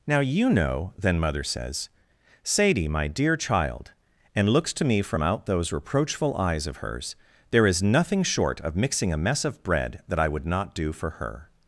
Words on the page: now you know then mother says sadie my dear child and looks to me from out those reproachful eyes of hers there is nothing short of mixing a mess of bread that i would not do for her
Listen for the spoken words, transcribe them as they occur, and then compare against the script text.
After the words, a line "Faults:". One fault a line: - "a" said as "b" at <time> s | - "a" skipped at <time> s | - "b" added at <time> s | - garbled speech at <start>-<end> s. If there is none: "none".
now you know then mother says sadie my dear child and looks to me from out those reproachful eyes of hers there is nothing short of mixing a mess of bread that i would not do for her
Faults:
none